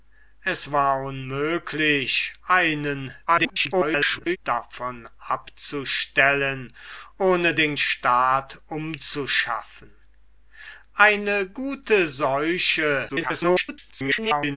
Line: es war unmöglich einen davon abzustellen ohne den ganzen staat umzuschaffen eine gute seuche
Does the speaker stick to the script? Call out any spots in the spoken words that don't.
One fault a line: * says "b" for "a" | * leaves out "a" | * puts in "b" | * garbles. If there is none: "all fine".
* garbles
* leaves out "ganzen"
* garbles